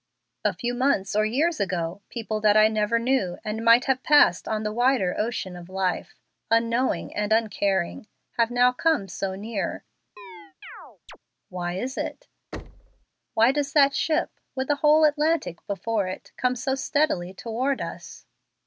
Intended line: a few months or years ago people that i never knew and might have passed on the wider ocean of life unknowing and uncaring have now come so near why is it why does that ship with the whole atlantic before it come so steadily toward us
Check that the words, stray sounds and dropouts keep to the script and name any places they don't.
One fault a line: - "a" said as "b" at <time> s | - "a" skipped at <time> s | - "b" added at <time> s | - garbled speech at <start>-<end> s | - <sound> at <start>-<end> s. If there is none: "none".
- chirp at 10.2-11.2 s
- thud at 12.5-13.1 s